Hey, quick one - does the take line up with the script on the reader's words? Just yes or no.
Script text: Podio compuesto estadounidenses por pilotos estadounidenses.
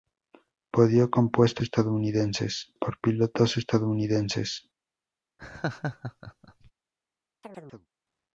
yes